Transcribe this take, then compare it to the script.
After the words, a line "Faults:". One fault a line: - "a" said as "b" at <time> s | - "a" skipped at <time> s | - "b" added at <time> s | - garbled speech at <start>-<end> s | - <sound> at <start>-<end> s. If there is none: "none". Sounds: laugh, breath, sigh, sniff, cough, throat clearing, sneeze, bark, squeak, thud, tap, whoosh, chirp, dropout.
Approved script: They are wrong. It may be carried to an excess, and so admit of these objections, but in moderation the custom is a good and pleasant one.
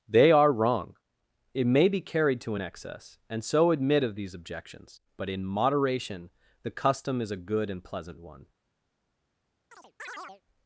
They are wrong. It may be carried to an excess, and so admit of these objections, but in moderation the custom is a good and pleasant one.
Faults:
- chirp at 9.7-10.4 s